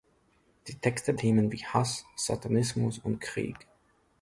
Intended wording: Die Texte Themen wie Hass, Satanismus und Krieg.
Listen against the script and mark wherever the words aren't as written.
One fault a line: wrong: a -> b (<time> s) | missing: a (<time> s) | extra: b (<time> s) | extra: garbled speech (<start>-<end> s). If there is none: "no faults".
no faults